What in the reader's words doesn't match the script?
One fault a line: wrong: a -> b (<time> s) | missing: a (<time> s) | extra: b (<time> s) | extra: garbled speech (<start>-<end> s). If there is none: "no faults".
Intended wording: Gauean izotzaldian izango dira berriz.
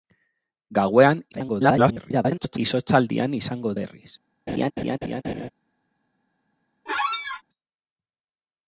extra: garbled speech (1.3-2.6 s)
missing: dira (3.8 s)